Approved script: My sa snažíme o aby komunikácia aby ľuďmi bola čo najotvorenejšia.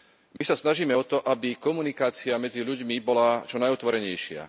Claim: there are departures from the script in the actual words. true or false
true